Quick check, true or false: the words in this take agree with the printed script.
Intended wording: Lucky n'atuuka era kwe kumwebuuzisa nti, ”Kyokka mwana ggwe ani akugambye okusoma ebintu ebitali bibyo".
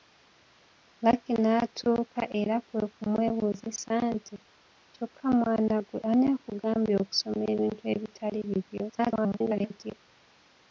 false